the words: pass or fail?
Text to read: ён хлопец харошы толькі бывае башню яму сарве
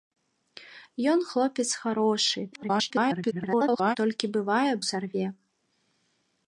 fail